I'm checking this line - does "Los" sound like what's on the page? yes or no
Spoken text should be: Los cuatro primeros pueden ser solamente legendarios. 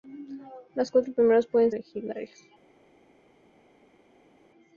yes